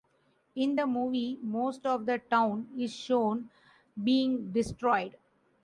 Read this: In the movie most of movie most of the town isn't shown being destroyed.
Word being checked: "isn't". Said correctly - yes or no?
no